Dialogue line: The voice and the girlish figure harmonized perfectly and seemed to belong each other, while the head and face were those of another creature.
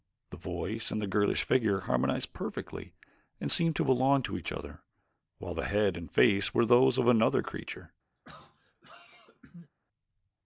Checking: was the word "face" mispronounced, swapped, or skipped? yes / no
no